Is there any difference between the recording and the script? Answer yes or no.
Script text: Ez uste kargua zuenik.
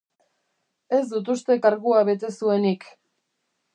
yes